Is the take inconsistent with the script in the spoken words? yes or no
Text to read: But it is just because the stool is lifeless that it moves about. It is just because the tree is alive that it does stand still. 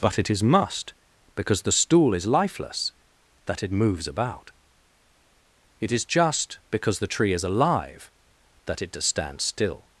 yes